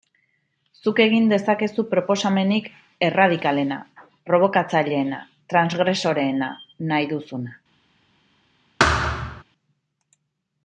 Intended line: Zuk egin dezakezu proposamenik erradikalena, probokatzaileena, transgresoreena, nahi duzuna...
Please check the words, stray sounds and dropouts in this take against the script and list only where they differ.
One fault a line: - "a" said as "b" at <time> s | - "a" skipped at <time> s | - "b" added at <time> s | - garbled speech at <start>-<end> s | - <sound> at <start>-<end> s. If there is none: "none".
- thud at 8.8-9.4 s